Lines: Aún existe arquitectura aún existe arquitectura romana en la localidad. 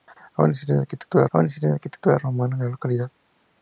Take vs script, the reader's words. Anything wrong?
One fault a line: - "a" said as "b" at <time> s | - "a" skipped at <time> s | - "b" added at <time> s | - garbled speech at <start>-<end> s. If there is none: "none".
none